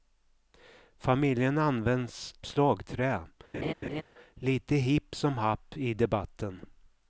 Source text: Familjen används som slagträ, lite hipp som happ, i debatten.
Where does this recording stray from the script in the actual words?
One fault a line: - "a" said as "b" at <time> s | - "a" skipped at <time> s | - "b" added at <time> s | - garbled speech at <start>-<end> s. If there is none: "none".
- "som" skipped at 2.4 s